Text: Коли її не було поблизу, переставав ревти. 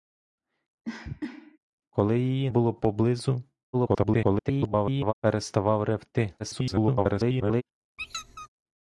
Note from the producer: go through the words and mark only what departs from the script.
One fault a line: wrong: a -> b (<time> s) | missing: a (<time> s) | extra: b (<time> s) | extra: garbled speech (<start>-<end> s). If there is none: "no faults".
missing: не (2.5 s)
extra: garbled speech (3.7-5.1 s)
extra: garbled speech (6.4-7.6 s)